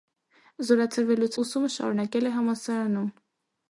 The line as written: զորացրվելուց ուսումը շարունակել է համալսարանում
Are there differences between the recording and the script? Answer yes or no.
no